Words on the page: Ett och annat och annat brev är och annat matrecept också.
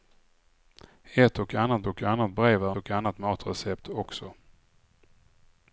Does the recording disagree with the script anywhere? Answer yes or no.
no